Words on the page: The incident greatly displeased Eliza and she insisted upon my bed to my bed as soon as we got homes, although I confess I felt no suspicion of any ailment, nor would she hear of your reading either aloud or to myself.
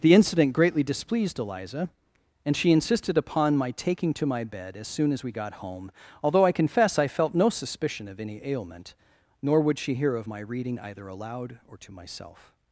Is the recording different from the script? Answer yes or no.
yes